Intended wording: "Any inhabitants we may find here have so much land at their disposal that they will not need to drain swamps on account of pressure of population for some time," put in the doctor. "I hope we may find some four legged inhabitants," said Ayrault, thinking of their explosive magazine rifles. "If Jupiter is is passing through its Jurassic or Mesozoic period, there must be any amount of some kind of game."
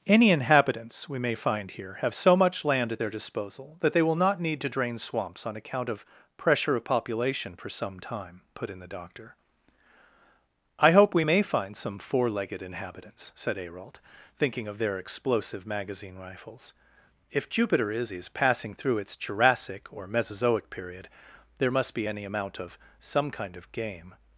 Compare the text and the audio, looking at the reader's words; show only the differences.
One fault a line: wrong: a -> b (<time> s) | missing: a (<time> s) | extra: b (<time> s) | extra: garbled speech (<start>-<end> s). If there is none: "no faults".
no faults